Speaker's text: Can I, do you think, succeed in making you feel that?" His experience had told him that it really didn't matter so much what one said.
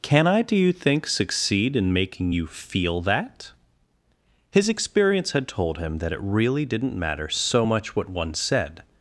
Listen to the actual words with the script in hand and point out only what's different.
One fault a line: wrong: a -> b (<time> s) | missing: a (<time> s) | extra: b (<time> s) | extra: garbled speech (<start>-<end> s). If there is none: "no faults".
no faults